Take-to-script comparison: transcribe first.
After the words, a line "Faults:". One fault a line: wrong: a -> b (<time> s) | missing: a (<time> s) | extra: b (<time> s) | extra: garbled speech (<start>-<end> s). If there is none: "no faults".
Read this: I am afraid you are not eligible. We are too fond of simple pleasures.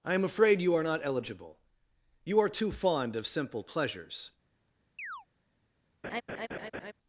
I am afraid you are not eligible. You are too fond of simple pleasures.
Faults:
wrong: We -> You (2.2 s)